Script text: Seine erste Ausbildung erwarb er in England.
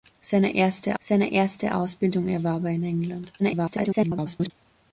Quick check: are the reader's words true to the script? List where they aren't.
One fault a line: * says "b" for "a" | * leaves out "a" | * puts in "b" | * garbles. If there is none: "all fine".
* puts in "seine erste"
* garbles